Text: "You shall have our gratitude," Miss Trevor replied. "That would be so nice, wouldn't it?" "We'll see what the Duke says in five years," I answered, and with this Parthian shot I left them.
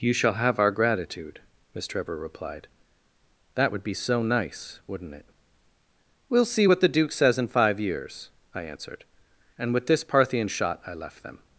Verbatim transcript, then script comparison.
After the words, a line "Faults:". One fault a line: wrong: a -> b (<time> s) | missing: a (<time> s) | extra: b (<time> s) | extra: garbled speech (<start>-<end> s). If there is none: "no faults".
"You shall have our gratitude," Miss Trevor replied. "That would be so nice, wouldn't it?" "We'll see what the Duke says in five years," I answered, and with this Parthian shot I left them.
Faults:
no faults